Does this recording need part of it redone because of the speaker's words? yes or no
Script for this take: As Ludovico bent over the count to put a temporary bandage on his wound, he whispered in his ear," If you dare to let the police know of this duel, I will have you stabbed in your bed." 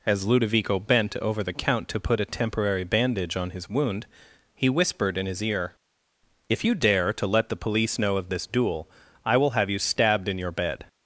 no